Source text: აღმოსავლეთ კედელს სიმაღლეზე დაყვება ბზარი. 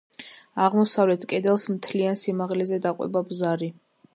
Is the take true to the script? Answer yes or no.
no